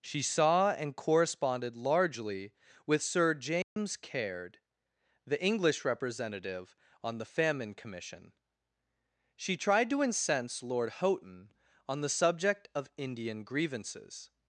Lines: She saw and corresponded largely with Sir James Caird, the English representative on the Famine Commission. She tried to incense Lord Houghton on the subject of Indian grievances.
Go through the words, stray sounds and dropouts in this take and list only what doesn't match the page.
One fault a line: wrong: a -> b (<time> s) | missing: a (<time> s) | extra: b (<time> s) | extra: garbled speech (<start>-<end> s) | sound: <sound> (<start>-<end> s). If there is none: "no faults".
sound: dropout (3.6-3.8 s)